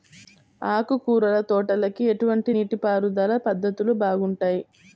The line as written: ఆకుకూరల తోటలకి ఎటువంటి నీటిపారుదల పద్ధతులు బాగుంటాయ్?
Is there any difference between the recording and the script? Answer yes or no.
no